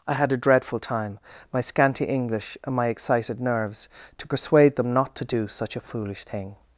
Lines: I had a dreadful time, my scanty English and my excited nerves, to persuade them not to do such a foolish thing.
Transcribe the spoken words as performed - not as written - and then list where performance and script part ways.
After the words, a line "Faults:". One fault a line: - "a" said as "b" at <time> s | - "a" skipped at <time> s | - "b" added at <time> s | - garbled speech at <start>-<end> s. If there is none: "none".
I had a dreadful time, my scanty English and my excited nerves, to persuade them not to do such a foolish thing.
Faults:
none